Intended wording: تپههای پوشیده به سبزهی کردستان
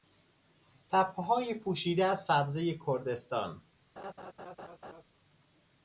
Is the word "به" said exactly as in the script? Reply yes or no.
no